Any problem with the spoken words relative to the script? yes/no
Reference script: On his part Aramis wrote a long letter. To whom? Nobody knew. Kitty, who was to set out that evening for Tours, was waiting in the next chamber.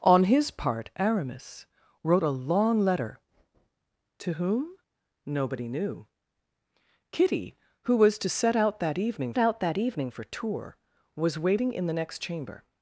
yes